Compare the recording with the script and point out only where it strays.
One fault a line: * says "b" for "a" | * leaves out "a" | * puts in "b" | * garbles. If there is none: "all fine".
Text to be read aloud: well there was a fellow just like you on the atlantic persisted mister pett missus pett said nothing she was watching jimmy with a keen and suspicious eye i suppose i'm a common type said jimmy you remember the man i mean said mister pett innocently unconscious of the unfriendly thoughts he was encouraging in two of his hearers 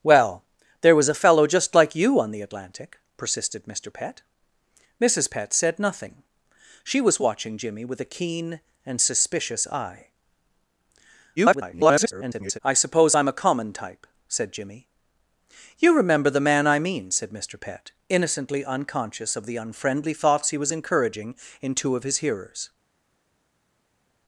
* garbles